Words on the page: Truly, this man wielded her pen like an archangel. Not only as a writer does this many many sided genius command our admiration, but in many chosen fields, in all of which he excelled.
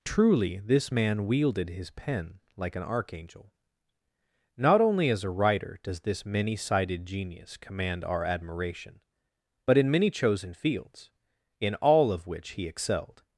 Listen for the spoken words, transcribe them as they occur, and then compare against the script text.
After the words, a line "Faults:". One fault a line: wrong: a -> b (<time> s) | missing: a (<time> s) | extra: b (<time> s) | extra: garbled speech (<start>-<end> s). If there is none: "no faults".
Truly, this man wielded his pen like an archangel. Not only as a writer does this many sided genius command our admiration, but in many chosen fields, in all of which he excelled.
Faults:
wrong: her -> his (1.7 s)
missing: many (6.6 s)